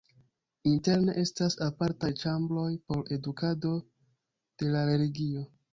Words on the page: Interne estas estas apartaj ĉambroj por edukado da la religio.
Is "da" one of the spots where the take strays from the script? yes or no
yes